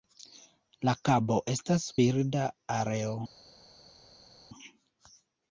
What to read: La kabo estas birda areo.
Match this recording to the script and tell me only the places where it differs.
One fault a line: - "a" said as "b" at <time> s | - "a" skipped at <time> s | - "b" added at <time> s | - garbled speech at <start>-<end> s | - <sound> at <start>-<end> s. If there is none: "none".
none